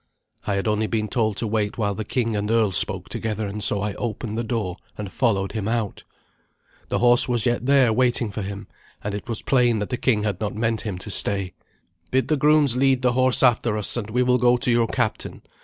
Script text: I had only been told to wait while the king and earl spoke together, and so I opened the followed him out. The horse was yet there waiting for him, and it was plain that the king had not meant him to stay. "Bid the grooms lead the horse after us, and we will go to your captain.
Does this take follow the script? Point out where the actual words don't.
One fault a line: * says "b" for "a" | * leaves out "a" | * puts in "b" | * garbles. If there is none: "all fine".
* puts in "door and"